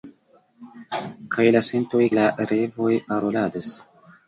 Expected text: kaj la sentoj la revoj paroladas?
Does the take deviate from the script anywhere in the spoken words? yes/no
no